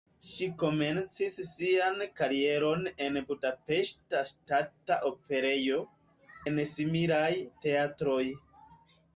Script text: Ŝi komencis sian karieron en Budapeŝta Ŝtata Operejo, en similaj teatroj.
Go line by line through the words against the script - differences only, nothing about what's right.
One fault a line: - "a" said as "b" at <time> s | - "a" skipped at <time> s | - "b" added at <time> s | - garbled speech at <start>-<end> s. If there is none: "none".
none